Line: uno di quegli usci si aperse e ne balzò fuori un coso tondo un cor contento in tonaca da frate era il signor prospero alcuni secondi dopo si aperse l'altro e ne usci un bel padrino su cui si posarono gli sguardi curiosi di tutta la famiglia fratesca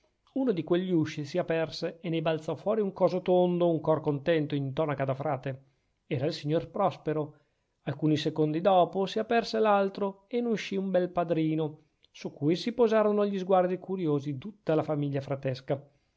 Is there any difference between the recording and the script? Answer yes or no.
yes